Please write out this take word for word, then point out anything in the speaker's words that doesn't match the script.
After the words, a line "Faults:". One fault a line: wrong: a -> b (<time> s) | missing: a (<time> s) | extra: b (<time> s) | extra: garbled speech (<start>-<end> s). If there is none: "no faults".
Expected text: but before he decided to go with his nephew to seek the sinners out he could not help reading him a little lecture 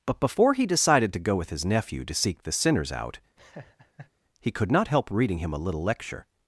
but before he decided to go with his nephew to seek the sinners out he could not help reading him a little lecture
Faults:
no faults